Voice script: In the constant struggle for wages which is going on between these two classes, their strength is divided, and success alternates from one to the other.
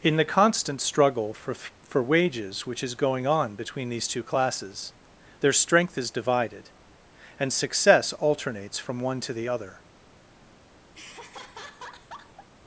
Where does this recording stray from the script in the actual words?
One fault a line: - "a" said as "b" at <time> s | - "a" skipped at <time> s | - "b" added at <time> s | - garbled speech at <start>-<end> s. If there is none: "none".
- "for" added at 1.5 s